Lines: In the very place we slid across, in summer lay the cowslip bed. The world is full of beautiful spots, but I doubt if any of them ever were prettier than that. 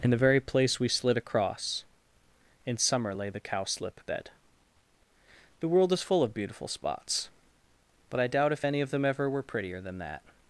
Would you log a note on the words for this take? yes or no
no